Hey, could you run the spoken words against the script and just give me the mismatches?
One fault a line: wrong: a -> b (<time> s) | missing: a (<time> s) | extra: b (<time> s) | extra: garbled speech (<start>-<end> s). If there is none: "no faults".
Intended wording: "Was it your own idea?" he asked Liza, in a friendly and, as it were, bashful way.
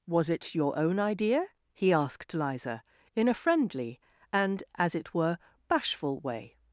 no faults